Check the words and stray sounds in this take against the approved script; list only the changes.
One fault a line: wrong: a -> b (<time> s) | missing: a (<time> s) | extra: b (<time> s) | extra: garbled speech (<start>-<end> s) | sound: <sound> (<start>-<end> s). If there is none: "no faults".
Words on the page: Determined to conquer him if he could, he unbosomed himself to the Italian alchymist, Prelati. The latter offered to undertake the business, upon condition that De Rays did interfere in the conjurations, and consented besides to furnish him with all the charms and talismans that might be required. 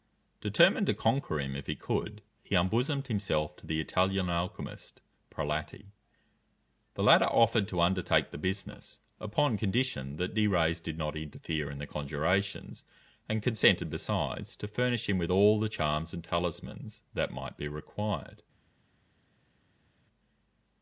extra: not (11.0 s)